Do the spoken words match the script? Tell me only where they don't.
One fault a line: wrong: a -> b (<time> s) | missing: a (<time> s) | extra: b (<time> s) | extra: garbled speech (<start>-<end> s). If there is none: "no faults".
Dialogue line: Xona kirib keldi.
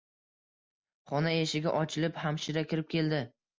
extra: eshigi ochilib hamshira (1.4 s)